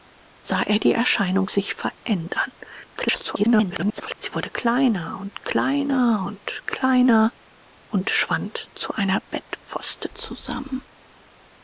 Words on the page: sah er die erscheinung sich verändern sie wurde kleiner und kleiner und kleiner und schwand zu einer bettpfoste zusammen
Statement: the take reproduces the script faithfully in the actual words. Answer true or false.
false